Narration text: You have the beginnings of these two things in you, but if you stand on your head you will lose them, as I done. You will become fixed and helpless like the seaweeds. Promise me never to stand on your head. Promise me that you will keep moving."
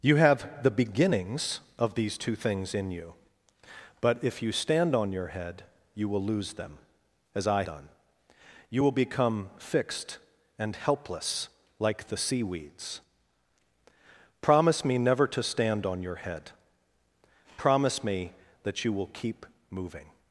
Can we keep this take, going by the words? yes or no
yes